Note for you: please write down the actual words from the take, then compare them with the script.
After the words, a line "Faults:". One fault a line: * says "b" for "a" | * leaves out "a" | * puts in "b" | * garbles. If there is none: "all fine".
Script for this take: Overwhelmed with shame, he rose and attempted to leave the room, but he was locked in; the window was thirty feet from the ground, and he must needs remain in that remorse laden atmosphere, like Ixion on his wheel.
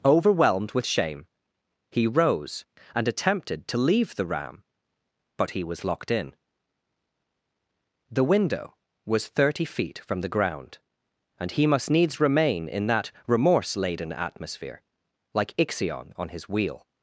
Overwhelmed with shame, he rose and attempted to leave the ram, but he was locked in; the window was thirty feet from the ground, and he must needs remain in that remorse laden atmosphere, like Ixion on his wheel.
Faults:
* says "ram" for "room"